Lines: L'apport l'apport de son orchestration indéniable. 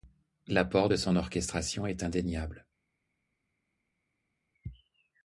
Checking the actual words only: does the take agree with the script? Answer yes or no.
no